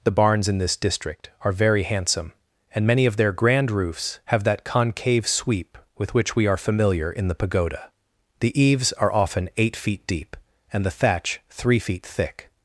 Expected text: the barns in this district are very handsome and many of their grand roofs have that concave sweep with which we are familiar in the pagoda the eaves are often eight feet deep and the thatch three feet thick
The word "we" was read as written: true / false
true